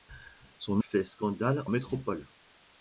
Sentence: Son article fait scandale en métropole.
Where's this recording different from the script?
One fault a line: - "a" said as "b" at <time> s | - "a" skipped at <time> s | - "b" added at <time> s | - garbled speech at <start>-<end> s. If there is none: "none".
- "article" skipped at 0.8 s
- "en" skipped at 1.6 s